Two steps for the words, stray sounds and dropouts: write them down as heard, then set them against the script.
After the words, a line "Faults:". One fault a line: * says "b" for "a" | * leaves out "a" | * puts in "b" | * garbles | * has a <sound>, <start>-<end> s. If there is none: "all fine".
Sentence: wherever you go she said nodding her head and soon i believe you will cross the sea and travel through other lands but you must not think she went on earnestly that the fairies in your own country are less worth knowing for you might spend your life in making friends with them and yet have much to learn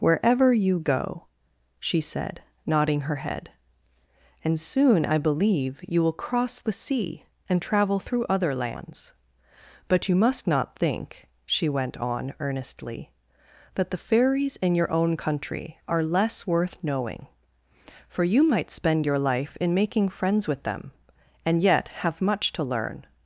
wherever you go she said nodding her head and soon i believe you will cross the sea and travel through other lands but you must not think she went on earnestly that the fairies in your own country are less worth knowing for you might spend your life in making friends with them and yet have much to learn
Faults:
all fine